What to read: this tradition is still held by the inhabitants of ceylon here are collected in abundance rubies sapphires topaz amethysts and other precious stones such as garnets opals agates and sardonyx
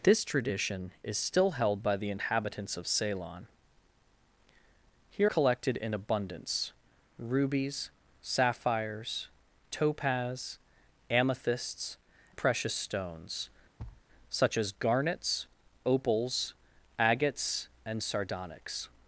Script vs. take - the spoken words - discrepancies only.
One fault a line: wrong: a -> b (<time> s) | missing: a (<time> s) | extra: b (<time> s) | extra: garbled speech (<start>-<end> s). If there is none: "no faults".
missing: are (5.3 s)
missing: and other (12.0 s)